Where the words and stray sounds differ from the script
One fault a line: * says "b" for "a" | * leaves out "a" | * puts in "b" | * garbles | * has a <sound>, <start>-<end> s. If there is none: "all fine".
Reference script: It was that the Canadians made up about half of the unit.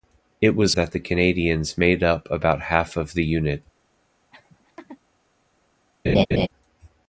* has a laugh, 4.3-5.0 s
* has a laugh, 6.0-6.5 s